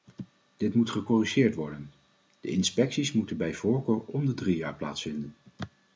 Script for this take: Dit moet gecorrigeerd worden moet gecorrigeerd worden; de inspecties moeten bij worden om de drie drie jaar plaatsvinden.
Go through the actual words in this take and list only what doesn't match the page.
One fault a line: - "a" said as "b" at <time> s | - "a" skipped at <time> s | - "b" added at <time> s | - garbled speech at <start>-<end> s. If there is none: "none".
- "moet gecorrigeerd worden" skipped at 1.9 s
- "worden" said as "voorkeur" at 3.5 s
- "drie" skipped at 4.6 s